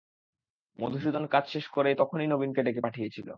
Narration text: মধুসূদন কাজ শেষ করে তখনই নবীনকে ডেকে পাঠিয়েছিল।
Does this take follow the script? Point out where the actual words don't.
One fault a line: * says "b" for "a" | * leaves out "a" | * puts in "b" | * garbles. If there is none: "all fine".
all fine